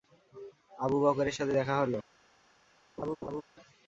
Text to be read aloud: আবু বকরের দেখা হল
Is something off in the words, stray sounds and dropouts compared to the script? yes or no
yes